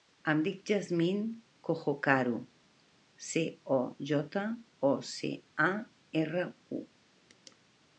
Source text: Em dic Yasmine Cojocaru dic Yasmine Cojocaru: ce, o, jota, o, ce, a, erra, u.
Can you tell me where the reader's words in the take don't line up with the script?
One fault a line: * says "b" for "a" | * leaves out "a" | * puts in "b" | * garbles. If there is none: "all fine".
* leaves out "dic Yasmine Cojocaru"